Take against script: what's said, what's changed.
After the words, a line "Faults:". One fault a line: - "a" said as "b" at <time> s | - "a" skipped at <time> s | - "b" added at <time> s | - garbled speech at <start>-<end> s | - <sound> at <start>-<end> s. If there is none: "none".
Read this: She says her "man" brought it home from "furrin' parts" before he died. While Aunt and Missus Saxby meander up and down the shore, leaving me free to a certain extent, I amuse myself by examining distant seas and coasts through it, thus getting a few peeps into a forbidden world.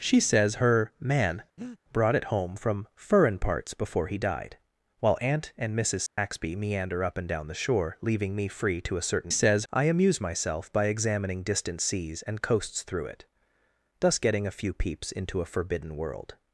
She says her "man" brought it home from "furrin' parts" before he died. While Aunt and Missus Saxby meander up and down the shore, leaving me free to a certain says, I amuse myself by examining distant seas and coasts through it, thus getting a few peeps into a forbidden world.
Faults:
- breath at 1.6-1.8 s
- dropout at 6.1-6.2 s
- "extent" said as "says" at 9.3 s